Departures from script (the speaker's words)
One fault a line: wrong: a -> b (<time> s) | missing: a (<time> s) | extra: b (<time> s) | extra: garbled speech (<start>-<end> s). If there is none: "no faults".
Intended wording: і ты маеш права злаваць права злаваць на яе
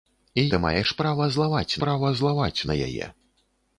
no faults